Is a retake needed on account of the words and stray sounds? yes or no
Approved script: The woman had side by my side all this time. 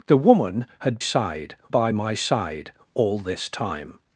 no